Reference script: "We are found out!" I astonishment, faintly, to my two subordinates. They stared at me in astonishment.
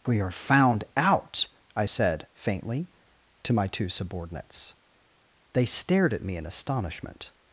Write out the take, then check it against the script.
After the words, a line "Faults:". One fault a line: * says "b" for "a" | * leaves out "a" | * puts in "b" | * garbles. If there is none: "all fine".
"We are found out!" I said, faintly, to my two subordinates. They stared at me in astonishment.
Faults:
* says "said" for "astonishment"